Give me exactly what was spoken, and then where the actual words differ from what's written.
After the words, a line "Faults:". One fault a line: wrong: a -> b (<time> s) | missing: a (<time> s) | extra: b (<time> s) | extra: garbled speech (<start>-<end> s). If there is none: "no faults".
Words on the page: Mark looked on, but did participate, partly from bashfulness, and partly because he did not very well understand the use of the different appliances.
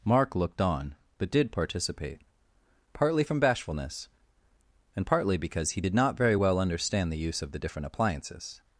Mark looked on, but did participate, partly from bashfulness, and partly because he did not very well understand the use of the different appliances.
Faults:
no faults